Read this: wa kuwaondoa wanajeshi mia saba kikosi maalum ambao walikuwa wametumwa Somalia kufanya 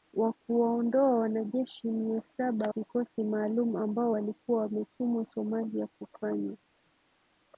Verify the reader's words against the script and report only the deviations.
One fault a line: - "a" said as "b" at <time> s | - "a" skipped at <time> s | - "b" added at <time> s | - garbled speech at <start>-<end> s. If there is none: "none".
none